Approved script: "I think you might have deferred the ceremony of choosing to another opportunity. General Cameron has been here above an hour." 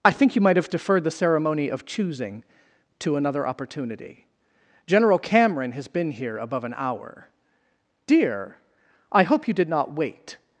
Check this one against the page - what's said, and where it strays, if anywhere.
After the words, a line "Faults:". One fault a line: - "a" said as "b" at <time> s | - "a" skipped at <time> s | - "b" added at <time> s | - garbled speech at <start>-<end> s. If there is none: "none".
"I think you might have deferred the ceremony of choosing to another opportunity. General Cameron has been here above an hour." "Dear! I hope you did not wait
Faults:
- "Dear I hope you did not wait" added at 8.1 s